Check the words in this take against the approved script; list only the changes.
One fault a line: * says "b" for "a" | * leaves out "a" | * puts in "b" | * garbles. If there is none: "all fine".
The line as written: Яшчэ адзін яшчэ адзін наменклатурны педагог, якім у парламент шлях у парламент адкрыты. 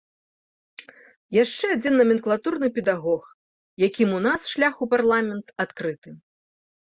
* leaves out "яшчэ адзін"
* says "нас" for "парламент"